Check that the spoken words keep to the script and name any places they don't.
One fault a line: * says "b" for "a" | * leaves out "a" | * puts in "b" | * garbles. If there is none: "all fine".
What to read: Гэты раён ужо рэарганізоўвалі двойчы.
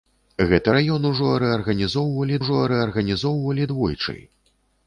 * puts in "ужо рэарганізоўвалі"